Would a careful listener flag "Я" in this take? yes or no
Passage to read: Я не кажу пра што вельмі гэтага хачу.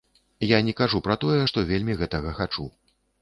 no